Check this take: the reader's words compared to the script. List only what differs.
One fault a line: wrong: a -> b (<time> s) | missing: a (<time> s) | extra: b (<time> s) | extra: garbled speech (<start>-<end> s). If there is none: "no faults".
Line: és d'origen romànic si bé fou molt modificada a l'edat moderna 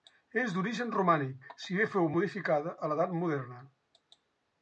missing: molt (2.1 s)